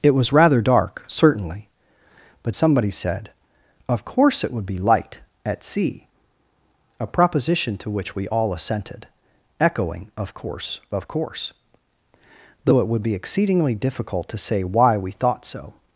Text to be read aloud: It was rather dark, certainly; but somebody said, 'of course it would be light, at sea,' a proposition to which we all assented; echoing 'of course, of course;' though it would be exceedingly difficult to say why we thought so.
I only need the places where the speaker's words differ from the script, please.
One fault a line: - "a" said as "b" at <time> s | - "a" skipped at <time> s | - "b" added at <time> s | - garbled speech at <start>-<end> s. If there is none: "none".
none